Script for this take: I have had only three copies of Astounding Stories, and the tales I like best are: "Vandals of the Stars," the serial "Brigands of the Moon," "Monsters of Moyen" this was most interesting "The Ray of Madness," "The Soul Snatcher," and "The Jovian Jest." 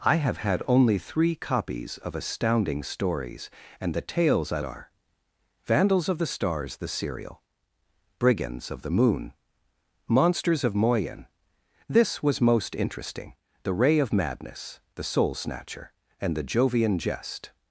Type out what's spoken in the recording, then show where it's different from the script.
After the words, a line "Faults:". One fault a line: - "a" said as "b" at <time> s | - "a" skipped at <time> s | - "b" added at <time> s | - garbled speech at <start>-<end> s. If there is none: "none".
I have had only three copies of Astounding Stories, and the tales I are: "Vandals of the Stars," the serial "Brigands of the Moon," "Monsters of Moyen" this was most interesting "The Ray of Madness," "The Soul Snatcher," and "The Jovian Jest."
Faults:
- "like best" skipped at 4.6 s